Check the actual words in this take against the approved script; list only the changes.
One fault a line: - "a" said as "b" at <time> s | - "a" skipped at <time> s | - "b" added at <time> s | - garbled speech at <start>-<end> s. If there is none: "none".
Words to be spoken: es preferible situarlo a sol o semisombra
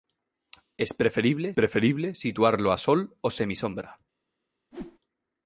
- "preferible" added at 1.5 s